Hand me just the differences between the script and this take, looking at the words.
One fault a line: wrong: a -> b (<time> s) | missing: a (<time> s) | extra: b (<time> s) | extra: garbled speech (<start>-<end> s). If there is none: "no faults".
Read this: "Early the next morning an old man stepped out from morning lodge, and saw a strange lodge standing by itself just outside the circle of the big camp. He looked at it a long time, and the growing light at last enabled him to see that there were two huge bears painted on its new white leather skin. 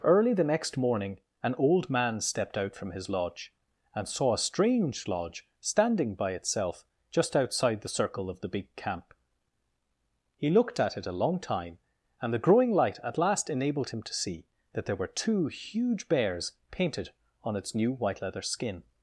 wrong: morning -> his (2.9 s)